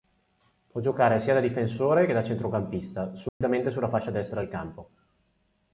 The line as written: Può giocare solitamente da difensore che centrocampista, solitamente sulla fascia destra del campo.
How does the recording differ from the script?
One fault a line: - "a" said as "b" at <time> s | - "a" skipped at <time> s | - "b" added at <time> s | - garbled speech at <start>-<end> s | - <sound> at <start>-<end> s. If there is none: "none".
- "solitamente" said as "sia" at 1.2 s
- "da" added at 2.1 s
- dropout at 3.3-3.4 s